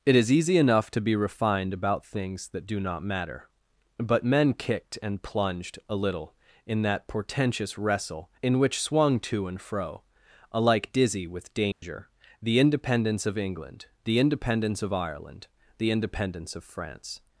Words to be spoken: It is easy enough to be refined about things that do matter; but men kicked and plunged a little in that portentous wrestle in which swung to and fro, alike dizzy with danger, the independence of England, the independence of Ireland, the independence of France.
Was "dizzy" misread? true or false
false